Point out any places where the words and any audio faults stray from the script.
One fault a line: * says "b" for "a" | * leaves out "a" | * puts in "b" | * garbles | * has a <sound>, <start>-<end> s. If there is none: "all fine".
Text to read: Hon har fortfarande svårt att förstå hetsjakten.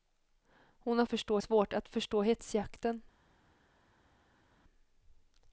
* says "förstå" for "fortfarande"